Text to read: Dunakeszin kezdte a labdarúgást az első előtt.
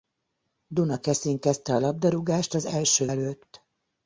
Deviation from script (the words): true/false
false